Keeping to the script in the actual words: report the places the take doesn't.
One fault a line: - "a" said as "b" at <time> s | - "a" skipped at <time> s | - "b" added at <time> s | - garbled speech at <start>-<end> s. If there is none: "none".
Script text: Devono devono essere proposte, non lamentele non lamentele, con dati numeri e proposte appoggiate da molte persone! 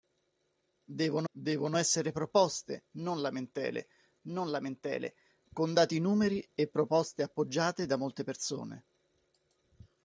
none